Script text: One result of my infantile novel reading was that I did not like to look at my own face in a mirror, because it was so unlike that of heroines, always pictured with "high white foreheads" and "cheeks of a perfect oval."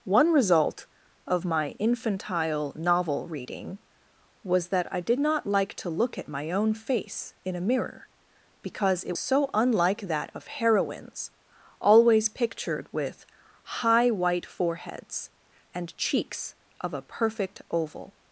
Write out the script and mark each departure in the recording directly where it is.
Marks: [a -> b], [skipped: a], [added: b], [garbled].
One result of my infantile novel reading was that I did not like to look at my own face in a mirror, because it [skipped: was] so unlike that of heroines, always pictured with "high white foreheads" and "cheeks of a perfect oval."